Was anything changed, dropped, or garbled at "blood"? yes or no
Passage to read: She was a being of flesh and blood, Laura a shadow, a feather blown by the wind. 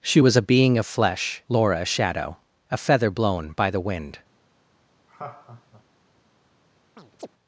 yes